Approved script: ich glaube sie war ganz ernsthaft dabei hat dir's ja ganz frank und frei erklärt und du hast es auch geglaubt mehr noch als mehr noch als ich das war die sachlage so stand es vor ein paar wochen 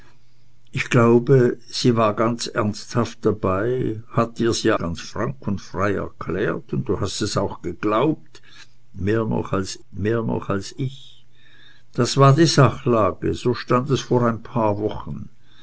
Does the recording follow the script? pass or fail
pass